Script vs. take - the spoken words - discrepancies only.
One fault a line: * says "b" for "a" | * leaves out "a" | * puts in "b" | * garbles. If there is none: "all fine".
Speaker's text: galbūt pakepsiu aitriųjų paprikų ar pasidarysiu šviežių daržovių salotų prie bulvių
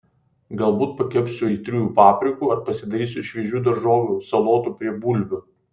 all fine